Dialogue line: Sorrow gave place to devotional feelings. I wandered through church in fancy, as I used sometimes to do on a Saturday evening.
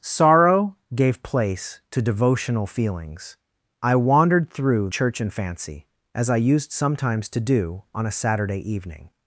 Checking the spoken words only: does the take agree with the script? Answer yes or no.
yes